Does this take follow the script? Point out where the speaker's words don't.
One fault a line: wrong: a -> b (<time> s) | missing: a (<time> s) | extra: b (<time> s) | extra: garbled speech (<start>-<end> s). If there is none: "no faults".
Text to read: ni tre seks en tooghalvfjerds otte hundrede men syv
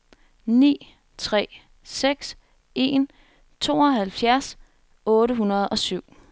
wrong: men -> og (5.7 s)